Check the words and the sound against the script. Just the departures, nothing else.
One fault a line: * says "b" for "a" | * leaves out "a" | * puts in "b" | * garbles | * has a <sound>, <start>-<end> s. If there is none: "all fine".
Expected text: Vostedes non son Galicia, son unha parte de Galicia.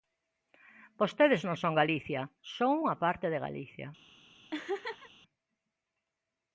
* has a laugh, 4.5-5.1 s